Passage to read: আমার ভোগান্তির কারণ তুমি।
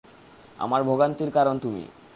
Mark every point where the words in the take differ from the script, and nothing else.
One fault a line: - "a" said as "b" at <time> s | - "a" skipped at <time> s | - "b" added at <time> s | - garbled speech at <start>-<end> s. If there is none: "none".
none